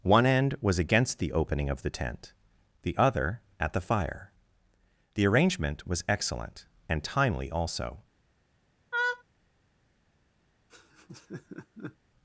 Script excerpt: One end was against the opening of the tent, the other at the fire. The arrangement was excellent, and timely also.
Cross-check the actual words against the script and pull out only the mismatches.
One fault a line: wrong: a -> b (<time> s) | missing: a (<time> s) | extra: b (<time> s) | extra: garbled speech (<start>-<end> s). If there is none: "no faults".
no faults